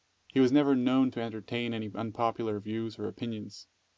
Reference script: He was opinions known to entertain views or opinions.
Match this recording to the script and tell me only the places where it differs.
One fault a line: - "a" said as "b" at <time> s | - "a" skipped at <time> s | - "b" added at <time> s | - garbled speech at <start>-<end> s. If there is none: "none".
- "opinions" said as "never" at 0.5 s
- "any unpopular" added at 1.7 s